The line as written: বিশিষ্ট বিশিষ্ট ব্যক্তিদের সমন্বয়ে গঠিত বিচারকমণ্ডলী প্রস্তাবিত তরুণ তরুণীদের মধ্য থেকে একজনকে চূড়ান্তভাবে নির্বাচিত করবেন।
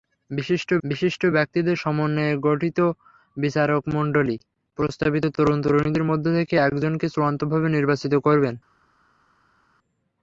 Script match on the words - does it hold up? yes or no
yes